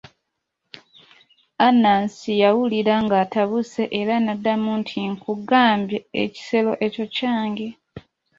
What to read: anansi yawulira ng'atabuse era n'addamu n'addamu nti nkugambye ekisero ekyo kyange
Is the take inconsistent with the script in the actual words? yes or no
yes